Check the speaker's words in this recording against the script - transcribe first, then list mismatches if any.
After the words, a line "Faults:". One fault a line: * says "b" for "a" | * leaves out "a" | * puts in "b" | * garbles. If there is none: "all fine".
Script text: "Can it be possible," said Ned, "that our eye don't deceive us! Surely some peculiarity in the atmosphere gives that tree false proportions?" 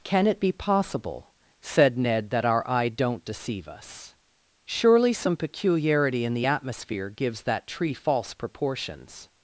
"Can it be possible," said Ned, "that our eye don't deceive us! Surely some peculiarity in the atmosphere gives that tree false proportions?"
Faults:
all fine